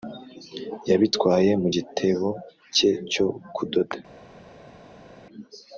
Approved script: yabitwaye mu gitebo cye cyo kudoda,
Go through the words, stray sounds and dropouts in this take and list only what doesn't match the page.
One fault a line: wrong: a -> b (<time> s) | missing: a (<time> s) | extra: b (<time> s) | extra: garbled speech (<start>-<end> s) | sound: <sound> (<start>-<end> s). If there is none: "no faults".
no faults